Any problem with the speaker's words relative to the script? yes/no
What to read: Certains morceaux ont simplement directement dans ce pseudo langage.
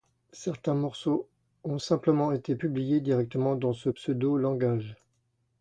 yes